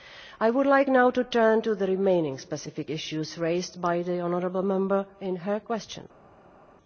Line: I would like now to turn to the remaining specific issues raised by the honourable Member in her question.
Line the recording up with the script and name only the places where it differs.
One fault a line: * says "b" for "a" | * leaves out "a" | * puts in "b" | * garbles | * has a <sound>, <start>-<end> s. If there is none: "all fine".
all fine